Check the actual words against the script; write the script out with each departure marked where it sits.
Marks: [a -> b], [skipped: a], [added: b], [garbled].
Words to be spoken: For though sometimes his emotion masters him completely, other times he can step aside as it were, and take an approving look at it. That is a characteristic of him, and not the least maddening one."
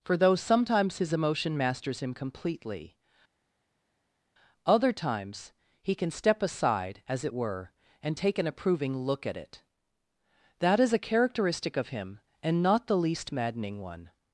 For though sometimes his emotion masters him completely, other times he can step aside as it were, and take an approving look at it. That is a characteristic of him, and not the least maddening one."